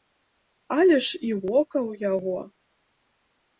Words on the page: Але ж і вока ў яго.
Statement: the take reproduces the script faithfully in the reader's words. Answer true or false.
true